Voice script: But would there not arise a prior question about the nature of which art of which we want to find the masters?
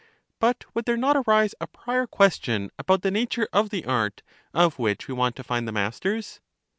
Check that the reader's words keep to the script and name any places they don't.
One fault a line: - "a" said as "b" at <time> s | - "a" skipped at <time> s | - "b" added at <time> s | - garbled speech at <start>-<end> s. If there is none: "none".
- "which" said as "the" at 3.7 s